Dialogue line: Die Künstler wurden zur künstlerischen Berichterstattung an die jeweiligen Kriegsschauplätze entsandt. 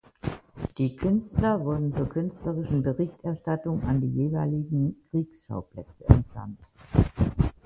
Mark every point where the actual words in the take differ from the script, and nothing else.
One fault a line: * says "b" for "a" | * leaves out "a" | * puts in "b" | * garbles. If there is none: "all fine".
all fine